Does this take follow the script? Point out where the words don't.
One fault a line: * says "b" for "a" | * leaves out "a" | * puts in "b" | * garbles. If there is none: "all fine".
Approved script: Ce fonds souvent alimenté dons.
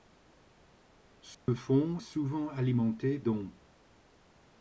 all fine